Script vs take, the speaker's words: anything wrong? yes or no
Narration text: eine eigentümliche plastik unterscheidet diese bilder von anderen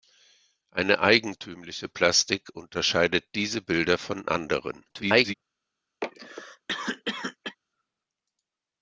yes